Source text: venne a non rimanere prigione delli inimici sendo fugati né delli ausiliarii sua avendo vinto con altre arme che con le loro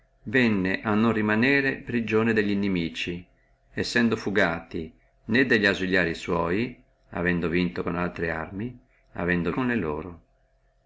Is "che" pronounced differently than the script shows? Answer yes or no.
yes